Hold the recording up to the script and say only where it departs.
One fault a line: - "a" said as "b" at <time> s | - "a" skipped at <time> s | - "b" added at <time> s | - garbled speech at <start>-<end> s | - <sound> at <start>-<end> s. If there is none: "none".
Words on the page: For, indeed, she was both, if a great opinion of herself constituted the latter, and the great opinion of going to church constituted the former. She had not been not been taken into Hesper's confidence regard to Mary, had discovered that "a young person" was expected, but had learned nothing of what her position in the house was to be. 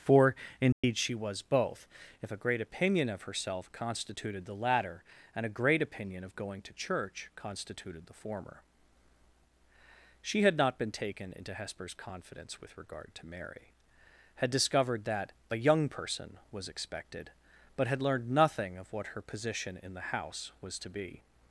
- dropout at 0.7-0.8 s
- "the" said as "a" at 5.5 s
- "not been" skipped at 10.9 s
- "with" added at 12.6 s